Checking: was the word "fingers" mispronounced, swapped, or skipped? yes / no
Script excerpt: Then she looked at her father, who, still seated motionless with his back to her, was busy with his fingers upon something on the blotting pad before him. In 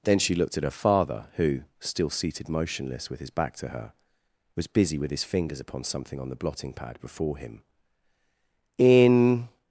no